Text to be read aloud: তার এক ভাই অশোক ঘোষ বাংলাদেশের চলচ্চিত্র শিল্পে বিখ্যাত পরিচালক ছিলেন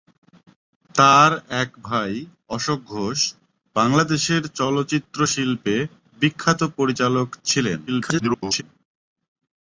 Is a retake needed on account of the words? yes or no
yes